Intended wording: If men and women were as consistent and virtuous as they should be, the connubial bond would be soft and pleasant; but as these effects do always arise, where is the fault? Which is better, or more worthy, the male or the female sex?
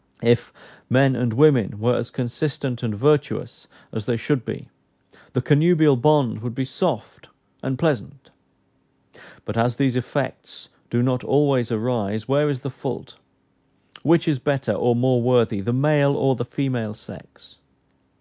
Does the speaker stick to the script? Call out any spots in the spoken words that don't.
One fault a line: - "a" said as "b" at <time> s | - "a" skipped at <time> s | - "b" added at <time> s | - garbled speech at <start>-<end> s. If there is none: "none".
- "not" added at 11.0 s